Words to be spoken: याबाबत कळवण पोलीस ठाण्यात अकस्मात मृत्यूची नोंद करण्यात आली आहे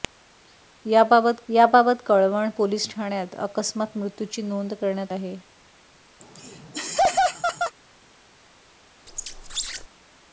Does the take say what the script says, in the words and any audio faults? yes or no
no